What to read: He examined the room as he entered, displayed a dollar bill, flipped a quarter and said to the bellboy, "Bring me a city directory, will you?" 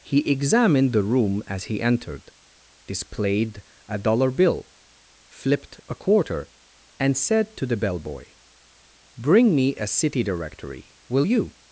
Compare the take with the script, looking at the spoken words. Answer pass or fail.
pass